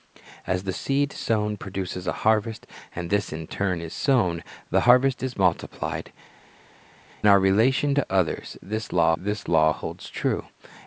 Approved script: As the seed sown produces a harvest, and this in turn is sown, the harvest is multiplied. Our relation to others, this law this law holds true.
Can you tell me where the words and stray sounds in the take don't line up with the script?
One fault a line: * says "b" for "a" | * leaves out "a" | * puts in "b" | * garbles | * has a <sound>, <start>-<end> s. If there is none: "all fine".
all fine